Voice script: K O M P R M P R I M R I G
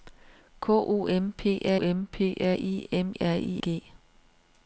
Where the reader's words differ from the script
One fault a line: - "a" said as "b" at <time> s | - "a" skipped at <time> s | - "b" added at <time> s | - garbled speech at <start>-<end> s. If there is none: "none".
none